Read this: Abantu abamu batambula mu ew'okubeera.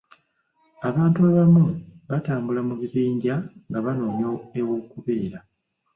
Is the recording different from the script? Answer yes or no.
yes